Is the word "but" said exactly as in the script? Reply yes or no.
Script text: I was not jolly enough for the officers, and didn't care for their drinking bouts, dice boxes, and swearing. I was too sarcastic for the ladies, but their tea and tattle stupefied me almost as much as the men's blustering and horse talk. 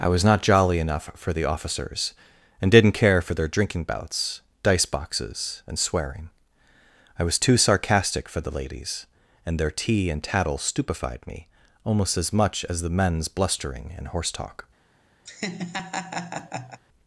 no